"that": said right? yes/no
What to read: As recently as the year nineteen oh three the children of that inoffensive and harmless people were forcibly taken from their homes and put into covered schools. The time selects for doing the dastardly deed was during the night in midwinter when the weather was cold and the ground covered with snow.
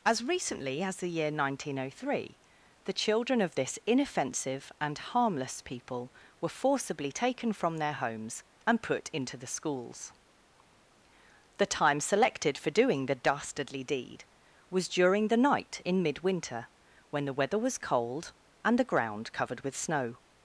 no